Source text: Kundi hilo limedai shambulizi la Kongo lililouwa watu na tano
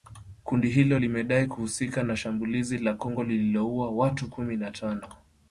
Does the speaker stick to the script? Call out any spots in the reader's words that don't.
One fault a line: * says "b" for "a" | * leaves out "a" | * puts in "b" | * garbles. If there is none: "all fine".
* puts in "kuhusika na"
* puts in "kumi"